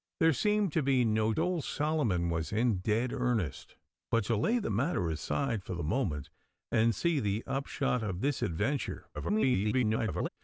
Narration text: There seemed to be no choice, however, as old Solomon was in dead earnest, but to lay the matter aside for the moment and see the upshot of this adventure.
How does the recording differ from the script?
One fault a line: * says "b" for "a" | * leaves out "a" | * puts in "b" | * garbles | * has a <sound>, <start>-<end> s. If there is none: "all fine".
* leaves out "choice however as"
* garbles